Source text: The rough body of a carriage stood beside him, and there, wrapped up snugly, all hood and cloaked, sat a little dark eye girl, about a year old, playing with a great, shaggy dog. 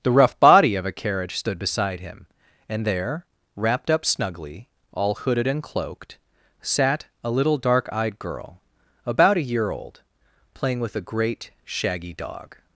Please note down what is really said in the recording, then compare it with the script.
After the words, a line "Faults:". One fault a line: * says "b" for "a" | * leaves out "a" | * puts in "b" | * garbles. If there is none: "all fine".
The rough body of a carriage stood beside him, and there, wrapped up snugly, all hooded and cloaked, sat a little dark eyed girl, about a year old, playing with a great, shaggy dog.
Faults:
* says "hooded" for "hood"
* says "eyed" for "eye"